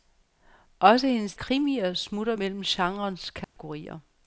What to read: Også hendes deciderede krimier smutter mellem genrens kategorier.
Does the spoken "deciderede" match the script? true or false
false